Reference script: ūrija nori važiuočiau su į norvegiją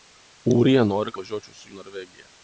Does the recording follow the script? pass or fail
pass